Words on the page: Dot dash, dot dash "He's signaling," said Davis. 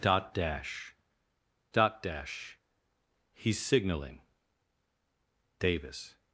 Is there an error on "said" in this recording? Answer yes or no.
yes